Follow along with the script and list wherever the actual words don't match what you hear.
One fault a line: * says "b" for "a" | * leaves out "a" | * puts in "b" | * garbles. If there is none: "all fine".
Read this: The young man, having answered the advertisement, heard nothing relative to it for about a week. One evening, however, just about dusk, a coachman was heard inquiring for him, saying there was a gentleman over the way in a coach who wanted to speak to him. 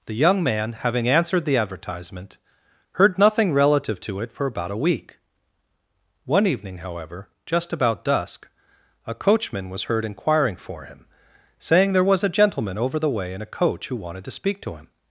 all fine